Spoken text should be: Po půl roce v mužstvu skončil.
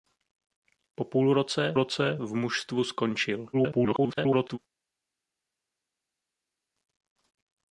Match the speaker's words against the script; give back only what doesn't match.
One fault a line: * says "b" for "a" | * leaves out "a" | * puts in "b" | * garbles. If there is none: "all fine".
* puts in "roce"
* garbles